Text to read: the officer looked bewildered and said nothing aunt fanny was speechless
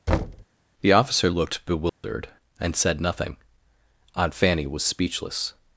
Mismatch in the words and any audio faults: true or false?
true